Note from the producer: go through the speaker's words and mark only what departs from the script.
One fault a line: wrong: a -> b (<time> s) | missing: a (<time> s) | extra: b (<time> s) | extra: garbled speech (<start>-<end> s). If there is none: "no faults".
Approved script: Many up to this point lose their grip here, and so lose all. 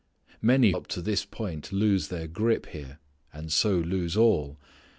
no faults